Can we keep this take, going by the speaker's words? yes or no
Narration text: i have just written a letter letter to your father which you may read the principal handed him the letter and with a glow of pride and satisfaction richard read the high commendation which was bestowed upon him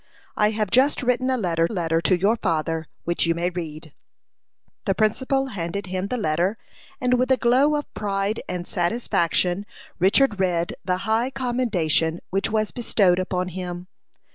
yes